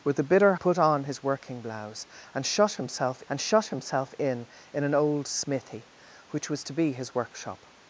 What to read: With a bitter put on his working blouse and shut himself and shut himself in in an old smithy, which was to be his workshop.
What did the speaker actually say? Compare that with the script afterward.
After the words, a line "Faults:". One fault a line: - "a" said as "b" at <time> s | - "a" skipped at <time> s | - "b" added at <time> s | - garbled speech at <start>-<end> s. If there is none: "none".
With a bitter put on his working blouse and shut himself and shut himself in in an old smithy, which was to be his workshop.
Faults:
none